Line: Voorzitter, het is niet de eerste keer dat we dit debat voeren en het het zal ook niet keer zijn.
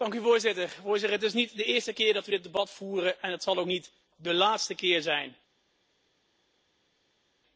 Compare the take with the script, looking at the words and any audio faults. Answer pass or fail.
fail